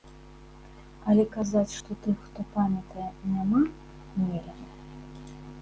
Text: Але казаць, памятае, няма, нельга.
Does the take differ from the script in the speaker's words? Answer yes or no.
yes